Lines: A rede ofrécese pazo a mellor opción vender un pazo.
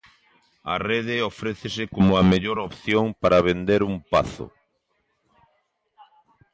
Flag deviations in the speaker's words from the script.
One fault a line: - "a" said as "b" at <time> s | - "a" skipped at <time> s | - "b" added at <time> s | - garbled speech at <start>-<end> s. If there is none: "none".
- "pazo" said as "como" at 1.9 s
- "para" added at 3.2 s